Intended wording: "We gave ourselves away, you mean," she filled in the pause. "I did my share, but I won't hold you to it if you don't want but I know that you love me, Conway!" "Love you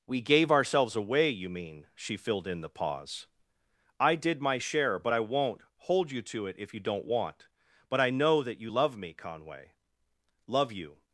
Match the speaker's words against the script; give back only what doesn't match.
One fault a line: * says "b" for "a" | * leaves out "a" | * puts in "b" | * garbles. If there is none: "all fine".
all fine